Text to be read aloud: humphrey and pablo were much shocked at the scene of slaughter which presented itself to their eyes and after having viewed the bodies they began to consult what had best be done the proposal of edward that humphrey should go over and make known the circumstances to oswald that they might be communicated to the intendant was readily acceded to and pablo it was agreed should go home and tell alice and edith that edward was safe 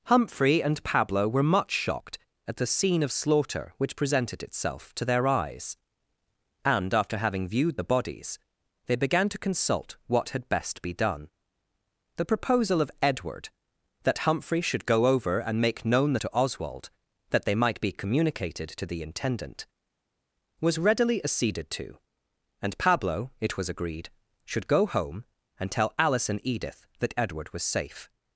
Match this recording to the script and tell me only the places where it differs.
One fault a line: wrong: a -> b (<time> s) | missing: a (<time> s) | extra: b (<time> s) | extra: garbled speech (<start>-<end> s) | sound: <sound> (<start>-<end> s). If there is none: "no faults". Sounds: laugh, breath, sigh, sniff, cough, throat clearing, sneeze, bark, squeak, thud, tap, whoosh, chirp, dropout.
missing: circumstances (16.2 s)